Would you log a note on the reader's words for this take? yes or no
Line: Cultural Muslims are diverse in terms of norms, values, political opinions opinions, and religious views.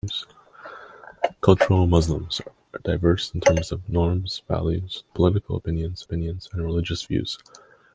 no